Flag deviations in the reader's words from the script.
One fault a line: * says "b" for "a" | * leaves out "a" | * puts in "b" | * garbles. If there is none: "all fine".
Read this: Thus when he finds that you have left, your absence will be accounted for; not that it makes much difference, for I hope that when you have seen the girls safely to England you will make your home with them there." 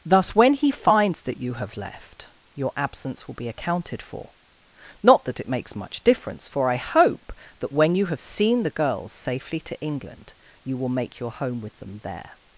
all fine